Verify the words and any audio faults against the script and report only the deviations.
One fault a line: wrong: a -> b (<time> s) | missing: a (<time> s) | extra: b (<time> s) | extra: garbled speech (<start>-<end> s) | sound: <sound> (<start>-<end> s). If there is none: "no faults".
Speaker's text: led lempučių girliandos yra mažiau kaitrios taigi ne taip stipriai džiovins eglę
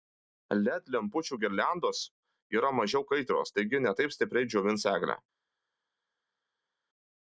no faults